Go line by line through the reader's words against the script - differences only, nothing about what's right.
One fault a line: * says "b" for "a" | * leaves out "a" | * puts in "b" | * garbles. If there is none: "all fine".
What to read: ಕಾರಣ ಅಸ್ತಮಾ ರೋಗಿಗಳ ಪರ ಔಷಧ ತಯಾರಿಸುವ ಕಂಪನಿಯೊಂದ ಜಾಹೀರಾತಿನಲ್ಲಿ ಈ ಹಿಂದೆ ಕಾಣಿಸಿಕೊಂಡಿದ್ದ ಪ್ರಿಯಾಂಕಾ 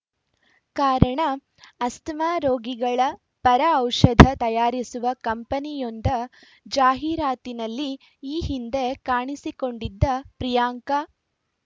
all fine